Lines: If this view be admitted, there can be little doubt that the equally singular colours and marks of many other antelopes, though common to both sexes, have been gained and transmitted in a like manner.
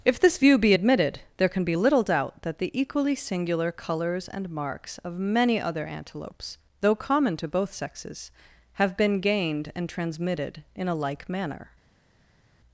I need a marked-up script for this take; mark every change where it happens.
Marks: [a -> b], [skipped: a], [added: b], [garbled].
If this view be admitted, there can be little doubt that the equally singular colours and marks of many other antelopes, though common to both sexes, have been gained and transmitted in a like manner.